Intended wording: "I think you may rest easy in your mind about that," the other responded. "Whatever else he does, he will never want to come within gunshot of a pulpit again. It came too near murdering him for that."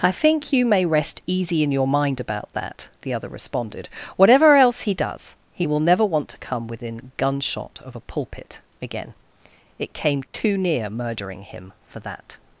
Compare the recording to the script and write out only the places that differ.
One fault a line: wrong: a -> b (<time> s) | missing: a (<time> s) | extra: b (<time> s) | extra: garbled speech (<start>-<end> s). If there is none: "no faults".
no faults